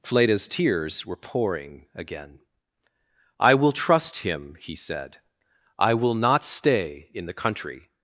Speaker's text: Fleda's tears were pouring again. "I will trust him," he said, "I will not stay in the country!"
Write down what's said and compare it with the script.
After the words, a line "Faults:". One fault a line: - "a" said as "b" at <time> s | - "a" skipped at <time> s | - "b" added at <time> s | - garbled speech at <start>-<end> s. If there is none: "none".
Fleda's tears were pouring again. "I will trust him," he said, "I will not stay in the country!"
Faults:
none